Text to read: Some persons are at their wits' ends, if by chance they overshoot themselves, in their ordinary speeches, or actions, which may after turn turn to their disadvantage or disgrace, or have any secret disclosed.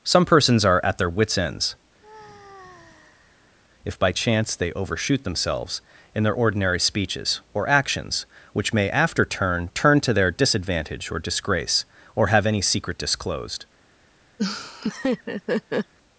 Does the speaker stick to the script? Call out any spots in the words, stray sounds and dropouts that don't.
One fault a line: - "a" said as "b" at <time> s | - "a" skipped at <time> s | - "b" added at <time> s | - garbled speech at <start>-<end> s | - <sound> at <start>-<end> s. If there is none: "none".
- sigh at 2.0-3.6 s
- laugh at 14.4-15.9 s